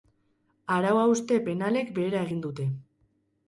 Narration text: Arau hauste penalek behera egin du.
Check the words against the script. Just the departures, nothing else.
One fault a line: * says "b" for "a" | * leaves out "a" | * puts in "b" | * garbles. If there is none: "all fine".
* says "dute" for "du"